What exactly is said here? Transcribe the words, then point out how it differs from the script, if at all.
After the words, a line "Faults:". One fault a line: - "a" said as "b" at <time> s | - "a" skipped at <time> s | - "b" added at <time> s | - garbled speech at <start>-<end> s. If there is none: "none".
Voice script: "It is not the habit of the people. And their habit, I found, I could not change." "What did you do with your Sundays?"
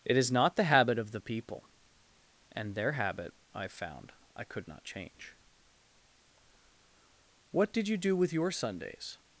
"It is not the habit of the people. And their habit, I found, I could not change." "What did you do with your Sundays?"
Faults:
none